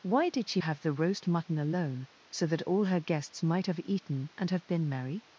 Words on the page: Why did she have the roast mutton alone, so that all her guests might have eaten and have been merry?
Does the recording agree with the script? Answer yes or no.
yes